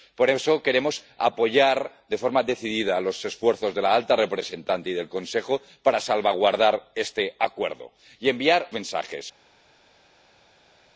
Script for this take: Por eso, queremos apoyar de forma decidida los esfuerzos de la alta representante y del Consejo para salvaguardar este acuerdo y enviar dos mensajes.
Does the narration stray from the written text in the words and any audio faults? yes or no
yes